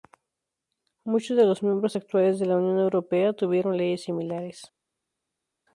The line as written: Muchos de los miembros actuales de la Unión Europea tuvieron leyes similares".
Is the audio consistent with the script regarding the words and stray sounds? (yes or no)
yes